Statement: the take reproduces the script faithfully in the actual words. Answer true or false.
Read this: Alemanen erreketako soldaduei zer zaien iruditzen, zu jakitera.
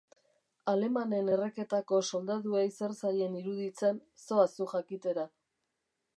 false